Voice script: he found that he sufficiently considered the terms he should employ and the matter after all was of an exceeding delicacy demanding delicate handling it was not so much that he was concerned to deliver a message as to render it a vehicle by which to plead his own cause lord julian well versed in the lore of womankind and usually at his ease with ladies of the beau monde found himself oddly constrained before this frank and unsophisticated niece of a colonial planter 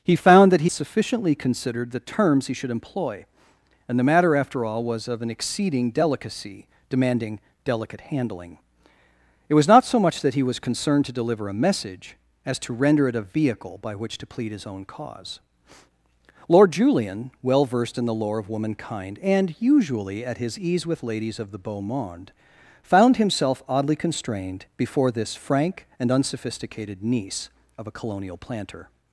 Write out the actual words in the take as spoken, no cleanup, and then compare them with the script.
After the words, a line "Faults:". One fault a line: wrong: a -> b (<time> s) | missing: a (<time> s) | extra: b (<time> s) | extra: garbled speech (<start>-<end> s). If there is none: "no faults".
he found that he sufficiently considered the terms he should employ and the matter after all was of an exceeding delicacy demanding delicate handling it was not so much that he was concerned to deliver a message as to render it a vehicle by which to plead his own cause lord julian well versed in the lore of womankind and usually at his ease with ladies of the beau monde found himself oddly constrained before this frank and unsophisticated niece of a colonial planter
Faults:
no faults